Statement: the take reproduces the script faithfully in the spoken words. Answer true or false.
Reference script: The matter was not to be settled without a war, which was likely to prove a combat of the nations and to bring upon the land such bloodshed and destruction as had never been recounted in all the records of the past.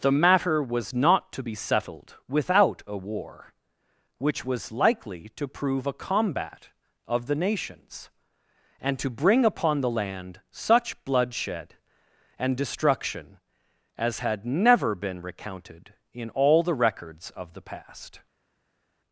true